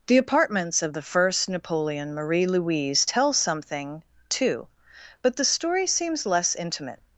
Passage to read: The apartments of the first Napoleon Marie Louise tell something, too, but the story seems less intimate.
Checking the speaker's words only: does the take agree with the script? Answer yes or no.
yes